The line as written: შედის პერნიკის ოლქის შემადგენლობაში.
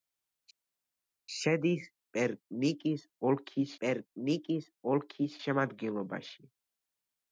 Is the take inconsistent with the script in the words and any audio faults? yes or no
yes